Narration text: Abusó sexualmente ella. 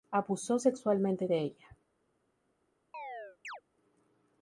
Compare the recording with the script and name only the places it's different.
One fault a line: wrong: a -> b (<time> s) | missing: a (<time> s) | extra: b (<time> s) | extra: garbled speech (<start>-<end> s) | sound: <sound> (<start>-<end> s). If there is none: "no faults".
extra: de (1.3 s)
sound: chirp (2.9-3.6 s)